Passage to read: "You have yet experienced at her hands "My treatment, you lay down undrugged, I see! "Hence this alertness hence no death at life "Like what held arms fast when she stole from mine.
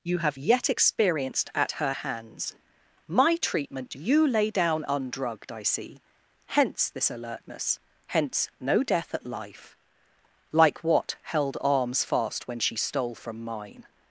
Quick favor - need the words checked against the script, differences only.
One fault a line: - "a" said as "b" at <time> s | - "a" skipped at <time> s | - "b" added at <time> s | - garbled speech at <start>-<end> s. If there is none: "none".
none